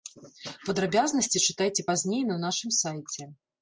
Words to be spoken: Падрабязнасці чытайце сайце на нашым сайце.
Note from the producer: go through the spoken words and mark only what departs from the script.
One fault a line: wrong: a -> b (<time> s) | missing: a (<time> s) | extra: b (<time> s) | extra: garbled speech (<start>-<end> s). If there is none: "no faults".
wrong: сайце -> пазней (1.9 s)